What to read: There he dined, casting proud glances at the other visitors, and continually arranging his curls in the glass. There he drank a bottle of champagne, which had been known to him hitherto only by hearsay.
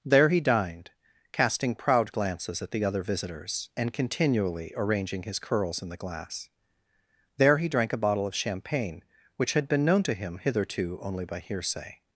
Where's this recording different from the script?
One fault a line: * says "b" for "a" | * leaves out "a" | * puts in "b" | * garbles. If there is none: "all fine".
all fine